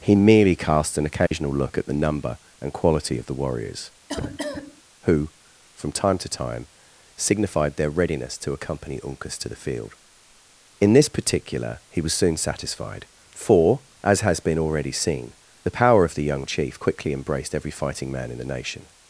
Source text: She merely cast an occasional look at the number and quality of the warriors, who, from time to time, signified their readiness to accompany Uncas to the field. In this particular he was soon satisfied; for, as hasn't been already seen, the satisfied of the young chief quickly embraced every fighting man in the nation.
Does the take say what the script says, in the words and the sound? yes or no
no